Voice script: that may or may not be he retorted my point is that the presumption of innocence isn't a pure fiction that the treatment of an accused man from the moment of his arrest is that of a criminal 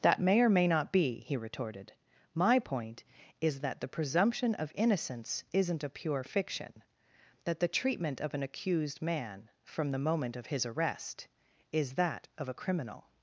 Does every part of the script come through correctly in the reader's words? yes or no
yes